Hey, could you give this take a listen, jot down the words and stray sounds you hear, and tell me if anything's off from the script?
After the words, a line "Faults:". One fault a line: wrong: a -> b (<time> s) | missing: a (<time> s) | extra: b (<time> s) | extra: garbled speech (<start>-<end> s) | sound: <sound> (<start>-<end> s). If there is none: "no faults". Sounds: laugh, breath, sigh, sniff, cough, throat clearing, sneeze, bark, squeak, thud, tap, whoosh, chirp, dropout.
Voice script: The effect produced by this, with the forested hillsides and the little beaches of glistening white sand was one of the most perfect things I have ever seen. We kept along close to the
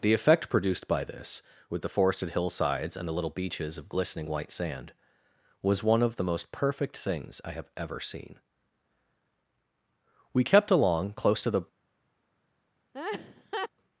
The effect produced by this, with the forested hillsides and the little beaches of glistening white sand was one of the most perfect things I have ever seen. We kept along close to the
Faults:
sound: laugh (12.9-13.7 s)